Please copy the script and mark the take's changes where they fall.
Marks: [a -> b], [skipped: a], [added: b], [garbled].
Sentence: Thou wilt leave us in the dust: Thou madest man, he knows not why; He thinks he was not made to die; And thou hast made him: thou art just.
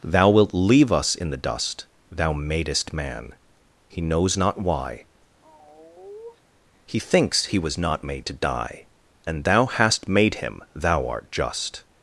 Thou wilt leave us in the dust: Thou madest man, he knows not why; He thinks he was not made to die; And thou hast made him: thou art just.